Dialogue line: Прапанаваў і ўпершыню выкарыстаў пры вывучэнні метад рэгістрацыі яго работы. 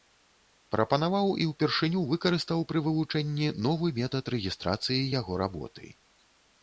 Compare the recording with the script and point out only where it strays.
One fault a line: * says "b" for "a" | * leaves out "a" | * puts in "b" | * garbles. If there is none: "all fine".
* puts in "новы"